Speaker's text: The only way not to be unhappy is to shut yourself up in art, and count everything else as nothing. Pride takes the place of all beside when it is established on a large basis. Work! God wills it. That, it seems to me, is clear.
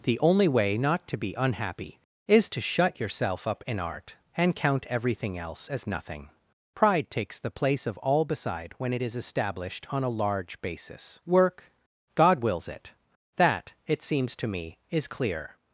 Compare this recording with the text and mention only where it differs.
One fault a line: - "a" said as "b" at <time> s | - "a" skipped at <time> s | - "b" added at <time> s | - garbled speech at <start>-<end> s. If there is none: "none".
none